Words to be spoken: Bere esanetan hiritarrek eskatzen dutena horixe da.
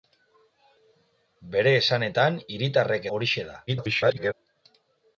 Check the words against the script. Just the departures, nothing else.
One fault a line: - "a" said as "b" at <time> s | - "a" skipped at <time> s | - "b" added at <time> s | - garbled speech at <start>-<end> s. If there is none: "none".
- "eskatzen dutena" skipped at 3.0 s
- garbled speech at 3.7-4.3 s